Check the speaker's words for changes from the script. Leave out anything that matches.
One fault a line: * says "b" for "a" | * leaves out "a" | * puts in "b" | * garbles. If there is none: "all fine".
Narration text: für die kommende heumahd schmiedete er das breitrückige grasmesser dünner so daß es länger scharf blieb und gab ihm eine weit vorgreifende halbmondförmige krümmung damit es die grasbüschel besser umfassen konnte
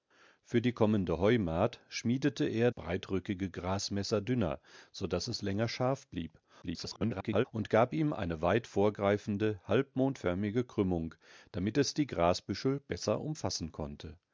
* leaves out "das"
* garbles